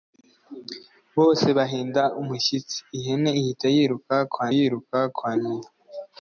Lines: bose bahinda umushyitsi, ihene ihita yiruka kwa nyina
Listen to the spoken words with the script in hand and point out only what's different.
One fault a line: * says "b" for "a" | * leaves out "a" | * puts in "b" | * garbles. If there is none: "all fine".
* puts in "yiruka kwa"